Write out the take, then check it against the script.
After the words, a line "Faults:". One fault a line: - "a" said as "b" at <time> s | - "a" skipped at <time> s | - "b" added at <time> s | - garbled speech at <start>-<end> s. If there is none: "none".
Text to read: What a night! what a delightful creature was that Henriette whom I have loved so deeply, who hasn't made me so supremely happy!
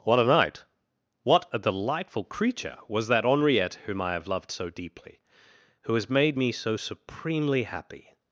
What a night! what a delightful creature was that Henriette whom I have loved so deeply, who has made me so supremely happy!
Faults:
- "hasn't" said as "has" at 5.9 s